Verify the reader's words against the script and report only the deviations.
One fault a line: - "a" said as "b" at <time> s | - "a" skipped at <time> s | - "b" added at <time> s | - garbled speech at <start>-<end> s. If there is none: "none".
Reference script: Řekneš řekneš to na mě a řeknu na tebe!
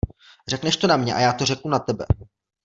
- "řekneš" skipped at 0.8 s
- "já to" added at 1.2 s